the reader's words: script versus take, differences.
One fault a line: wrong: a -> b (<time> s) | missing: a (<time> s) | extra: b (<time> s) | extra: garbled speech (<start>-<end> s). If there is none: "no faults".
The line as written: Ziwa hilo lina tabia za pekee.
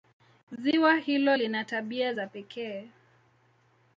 no faults